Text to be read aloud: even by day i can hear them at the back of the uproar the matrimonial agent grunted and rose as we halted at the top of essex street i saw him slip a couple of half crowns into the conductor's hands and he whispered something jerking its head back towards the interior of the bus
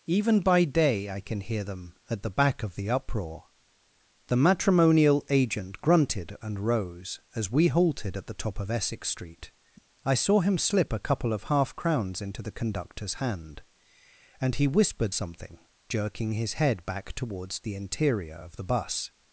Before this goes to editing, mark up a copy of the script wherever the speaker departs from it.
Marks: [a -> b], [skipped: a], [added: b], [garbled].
even by day i can hear them at the back of the uproar the matrimonial agent grunted and rose as we halted at the top of essex street i saw him slip a couple of half crowns into the conductor's [hands -> hand] and he whispered something jerking [its -> his] head back towards the interior of the bus